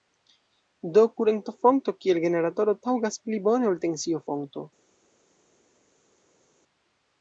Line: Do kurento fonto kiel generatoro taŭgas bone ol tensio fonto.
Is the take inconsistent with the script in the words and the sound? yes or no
yes